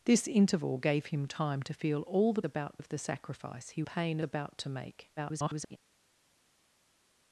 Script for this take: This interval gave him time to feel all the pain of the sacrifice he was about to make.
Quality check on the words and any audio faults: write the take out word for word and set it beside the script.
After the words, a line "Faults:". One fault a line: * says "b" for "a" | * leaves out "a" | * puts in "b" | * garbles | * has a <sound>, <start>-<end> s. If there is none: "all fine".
This interval gave him time to feel all the about of the sacrifice he pain about to make. [garbled]
Faults:
* says "about" for "pain"
* says "pain" for "was"
* garbles